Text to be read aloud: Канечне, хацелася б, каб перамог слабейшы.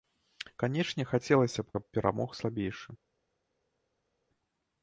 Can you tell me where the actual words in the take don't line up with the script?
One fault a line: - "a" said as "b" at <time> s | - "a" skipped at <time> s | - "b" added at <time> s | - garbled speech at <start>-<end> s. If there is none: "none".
none